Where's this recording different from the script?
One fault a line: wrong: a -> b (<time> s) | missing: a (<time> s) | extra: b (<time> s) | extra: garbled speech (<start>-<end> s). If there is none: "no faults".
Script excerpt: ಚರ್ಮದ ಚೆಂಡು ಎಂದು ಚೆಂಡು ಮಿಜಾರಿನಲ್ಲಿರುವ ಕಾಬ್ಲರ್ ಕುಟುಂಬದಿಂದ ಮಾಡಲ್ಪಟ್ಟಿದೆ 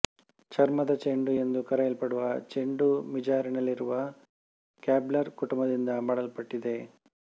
extra: ಕರೆಯಲ್ಪಡುವ (1.6 s)